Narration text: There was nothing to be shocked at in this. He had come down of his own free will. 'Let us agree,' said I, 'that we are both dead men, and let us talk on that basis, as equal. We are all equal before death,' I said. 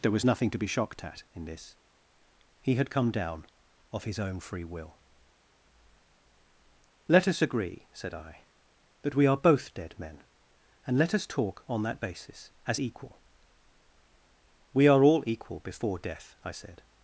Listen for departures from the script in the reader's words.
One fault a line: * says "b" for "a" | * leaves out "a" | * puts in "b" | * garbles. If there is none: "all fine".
all fine